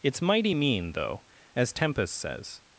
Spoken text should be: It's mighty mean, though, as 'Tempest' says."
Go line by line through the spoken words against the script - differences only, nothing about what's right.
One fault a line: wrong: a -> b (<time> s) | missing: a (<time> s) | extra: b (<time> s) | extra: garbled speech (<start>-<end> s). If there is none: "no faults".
no faults